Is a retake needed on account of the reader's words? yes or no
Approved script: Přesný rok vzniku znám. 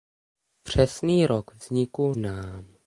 no